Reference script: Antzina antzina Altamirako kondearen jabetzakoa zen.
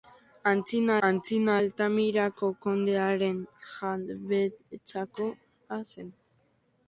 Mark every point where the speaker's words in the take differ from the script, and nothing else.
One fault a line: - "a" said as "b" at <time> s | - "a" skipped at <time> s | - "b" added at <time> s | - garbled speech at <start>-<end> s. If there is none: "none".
none